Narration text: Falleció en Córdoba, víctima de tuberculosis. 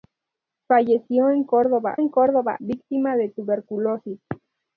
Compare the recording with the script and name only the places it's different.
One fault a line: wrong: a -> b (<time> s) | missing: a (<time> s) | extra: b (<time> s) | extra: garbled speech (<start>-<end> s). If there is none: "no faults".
extra: en Córdoba (1.9 s)